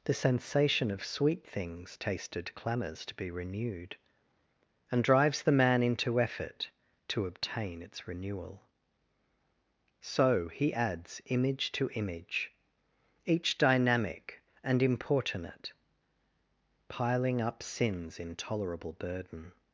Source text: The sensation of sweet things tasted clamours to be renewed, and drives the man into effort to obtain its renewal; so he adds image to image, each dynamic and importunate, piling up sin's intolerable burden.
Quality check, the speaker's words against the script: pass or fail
pass